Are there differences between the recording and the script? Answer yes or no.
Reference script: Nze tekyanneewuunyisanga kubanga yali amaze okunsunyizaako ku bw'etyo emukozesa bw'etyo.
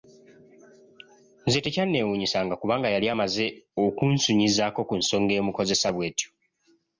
yes